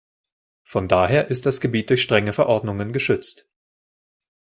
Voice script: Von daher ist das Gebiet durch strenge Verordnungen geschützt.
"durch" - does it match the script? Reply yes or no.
yes